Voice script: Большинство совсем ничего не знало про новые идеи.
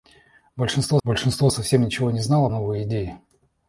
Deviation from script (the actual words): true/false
true